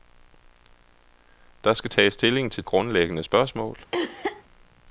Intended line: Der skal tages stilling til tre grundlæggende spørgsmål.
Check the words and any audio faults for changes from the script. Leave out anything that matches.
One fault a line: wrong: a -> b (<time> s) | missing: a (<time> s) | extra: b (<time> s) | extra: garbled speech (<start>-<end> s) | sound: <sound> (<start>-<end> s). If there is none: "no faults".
missing: tre (2.6 s)
sound: cough (3.9-4.4 s)